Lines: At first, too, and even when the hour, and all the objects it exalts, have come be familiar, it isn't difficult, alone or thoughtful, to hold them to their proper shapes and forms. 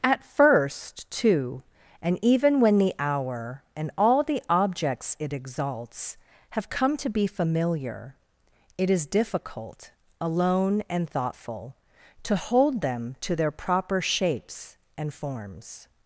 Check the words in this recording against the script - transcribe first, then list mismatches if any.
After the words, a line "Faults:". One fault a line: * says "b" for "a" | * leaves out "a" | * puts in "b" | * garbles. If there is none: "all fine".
At first, too, and even when the hour, and all the objects it exalts, have come to be familiar, it is difficult, alone and thoughtful, to hold them to their proper shapes and forms.
Faults:
* puts in "to"
* says "is" for "isn't"
* says "and" for "or"